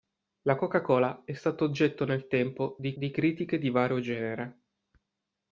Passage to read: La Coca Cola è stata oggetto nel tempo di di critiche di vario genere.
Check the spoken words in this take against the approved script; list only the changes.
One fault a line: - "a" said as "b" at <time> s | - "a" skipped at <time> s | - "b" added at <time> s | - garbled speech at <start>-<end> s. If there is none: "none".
none